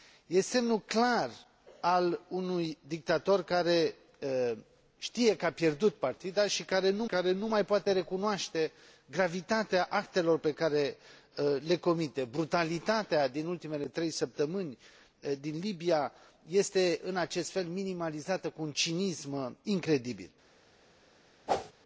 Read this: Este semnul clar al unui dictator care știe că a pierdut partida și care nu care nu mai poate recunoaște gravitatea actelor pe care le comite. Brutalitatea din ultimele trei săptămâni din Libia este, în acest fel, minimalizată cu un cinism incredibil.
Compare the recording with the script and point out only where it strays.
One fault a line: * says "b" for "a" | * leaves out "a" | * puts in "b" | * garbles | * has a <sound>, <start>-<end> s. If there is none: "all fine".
* has a whoosh, 21.5-21.7 s